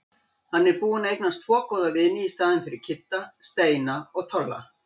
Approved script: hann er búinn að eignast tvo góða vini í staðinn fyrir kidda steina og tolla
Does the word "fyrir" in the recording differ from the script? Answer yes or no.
no